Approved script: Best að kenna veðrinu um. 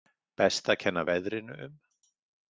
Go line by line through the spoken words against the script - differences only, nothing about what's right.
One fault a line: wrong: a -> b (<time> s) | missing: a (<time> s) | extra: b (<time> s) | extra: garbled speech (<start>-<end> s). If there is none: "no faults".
no faults